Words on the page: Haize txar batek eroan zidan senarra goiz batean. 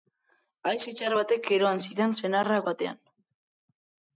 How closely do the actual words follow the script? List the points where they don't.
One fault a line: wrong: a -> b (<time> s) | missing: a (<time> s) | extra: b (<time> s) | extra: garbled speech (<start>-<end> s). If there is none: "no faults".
missing: goiz (2.6 s)